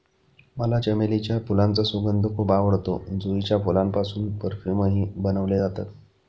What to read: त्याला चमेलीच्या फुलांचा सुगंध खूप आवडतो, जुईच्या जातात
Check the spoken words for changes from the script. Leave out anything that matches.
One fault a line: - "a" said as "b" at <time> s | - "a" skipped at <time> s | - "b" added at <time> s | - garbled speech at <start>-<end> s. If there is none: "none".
- "त्याला" said as "मला" at 0.6 s
- "फुलांपासून परफ्यूमही बनवले" added at 3.6 s